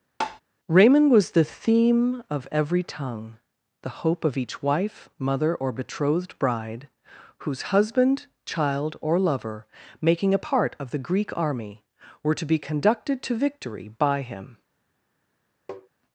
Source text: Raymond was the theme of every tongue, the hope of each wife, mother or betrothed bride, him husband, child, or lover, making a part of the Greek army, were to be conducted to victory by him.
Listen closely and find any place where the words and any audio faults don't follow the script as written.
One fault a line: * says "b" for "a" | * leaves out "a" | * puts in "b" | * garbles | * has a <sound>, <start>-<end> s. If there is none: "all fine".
* has a tap, 0.2-0.4 s
* says "whose" for "him"
* has a tap, 15.7-15.9 s